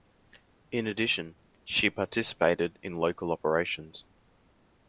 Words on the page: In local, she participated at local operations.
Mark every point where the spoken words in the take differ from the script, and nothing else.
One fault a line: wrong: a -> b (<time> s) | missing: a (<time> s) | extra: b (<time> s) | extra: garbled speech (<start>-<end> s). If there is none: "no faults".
wrong: local -> addition (0.9 s)
wrong: at -> in (2.8 s)